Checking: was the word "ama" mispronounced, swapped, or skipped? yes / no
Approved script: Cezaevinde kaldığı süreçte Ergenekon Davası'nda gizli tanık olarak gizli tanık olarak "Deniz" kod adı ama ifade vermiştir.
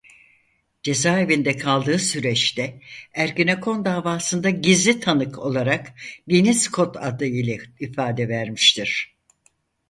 yes